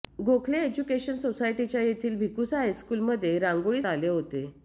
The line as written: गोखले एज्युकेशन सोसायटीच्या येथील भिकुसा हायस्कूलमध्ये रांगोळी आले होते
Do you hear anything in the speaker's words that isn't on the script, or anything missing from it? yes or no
no